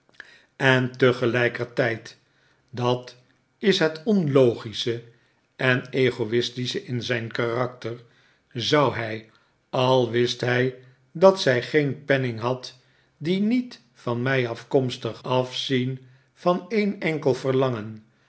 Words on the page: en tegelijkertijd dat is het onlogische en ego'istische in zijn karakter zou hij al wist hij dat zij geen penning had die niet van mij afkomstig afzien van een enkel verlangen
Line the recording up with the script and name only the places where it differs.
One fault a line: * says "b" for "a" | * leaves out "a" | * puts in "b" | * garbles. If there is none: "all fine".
all fine